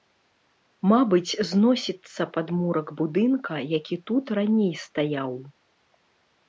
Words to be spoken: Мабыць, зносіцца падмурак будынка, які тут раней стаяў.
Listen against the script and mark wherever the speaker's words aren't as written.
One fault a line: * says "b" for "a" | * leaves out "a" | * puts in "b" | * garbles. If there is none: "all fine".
all fine